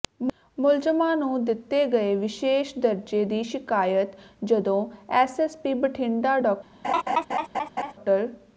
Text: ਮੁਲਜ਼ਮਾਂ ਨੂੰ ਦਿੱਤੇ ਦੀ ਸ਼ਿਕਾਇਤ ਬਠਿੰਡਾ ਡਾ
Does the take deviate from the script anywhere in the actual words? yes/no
yes